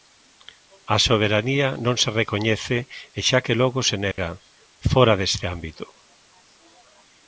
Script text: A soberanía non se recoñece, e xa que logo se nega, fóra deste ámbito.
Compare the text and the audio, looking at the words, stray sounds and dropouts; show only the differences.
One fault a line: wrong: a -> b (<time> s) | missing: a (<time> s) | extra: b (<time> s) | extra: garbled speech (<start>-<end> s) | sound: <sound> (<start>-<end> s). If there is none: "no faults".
sound: dropout (4.1-4.2 s)